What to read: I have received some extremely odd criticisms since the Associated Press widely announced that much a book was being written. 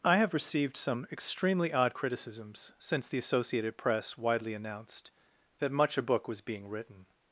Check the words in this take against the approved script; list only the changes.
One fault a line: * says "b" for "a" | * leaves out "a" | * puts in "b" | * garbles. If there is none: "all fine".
all fine